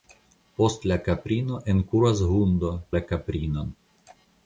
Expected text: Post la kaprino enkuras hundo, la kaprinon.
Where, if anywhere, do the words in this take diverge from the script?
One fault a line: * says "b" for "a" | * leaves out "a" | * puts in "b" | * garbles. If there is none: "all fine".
all fine